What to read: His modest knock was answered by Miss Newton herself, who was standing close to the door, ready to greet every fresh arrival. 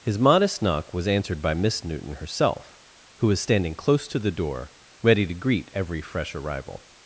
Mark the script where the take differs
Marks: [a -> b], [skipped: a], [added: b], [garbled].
His modest knock was answered by Miss Newton herself, who was standing close to the door, ready to greet every fresh arrival.